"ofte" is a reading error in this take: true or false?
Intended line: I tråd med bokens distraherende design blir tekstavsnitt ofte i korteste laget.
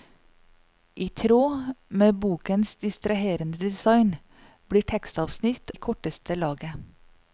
true